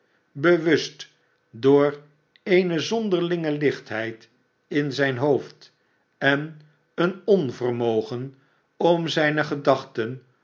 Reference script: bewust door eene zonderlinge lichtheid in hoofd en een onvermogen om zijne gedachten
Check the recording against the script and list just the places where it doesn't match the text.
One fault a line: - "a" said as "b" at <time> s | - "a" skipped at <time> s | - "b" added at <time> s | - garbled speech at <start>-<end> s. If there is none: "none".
- "zijn" added at 4.9 s